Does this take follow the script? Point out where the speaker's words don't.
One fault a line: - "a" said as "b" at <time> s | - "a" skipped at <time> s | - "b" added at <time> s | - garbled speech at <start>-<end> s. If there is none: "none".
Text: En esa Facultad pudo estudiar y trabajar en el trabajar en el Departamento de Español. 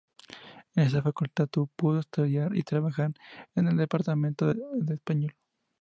- "trabajar en el" skipped at 3.8 s